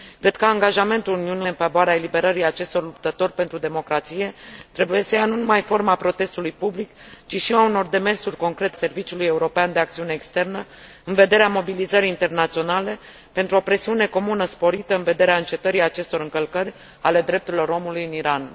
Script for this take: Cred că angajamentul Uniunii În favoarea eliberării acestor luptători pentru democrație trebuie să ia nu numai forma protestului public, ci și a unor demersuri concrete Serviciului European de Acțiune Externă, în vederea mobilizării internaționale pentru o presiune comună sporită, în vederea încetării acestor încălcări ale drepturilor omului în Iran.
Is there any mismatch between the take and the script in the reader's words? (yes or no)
no